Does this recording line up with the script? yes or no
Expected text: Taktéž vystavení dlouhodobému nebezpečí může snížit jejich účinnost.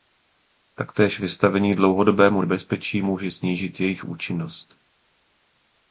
yes